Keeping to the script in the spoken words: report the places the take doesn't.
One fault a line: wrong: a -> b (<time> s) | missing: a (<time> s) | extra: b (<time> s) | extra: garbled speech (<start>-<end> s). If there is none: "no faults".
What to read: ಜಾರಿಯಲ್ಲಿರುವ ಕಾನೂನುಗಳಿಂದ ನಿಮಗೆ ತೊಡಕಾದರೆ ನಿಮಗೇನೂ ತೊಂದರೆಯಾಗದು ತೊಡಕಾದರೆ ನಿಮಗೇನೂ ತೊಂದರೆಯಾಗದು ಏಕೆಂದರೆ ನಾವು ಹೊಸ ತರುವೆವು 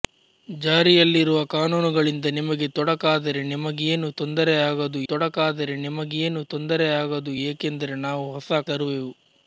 no faults